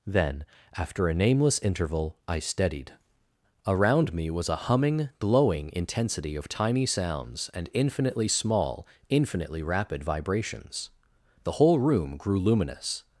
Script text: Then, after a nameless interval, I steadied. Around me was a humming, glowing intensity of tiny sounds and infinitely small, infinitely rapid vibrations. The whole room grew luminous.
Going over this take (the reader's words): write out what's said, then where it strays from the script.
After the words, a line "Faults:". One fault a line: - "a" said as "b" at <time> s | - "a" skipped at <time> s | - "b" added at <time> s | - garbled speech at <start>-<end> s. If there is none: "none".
Then, after a nameless interval, I steadied. Around me was a humming, glowing intensity of tiny sounds and infinitely small, infinitely rapid vibrations. The whole room grew luminous.
Faults:
none